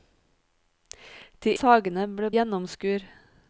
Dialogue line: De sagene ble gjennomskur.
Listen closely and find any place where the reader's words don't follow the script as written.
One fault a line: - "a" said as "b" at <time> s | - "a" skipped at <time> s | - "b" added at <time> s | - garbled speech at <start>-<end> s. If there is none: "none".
none